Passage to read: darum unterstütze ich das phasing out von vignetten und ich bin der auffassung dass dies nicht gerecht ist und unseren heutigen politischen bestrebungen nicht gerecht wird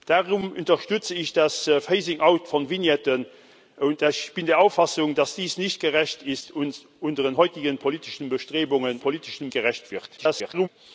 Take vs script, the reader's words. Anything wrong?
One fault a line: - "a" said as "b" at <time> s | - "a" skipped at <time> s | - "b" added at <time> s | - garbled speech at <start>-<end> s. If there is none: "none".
- "nicht" said as "politischen" at 9.0 s
- garbled speech at 10.2-10.7 s